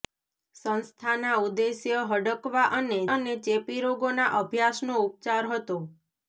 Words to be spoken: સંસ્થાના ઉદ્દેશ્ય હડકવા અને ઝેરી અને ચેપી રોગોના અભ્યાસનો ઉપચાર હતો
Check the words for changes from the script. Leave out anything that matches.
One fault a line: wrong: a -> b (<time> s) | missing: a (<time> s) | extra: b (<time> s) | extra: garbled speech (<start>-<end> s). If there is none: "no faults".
missing: ઝેરી (3.0 s)